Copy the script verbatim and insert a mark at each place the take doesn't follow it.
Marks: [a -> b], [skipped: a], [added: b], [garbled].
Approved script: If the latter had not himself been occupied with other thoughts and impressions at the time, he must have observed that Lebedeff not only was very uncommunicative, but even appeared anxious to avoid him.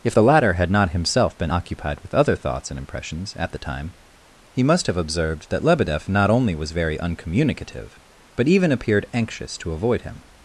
If the latter had not himself been occupied with other thoughts and impressions at the time, he must have observed that Lebedeff not only was very uncommunicative, but even appeared anxious to avoid him.